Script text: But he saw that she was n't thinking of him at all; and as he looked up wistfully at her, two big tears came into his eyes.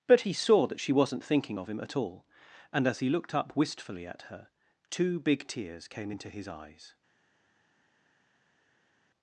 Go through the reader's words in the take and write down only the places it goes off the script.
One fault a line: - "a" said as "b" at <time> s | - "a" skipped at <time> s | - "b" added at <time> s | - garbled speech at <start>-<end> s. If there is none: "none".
none